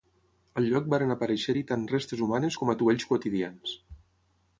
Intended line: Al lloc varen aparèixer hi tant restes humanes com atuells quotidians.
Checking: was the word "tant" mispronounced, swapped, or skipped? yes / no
no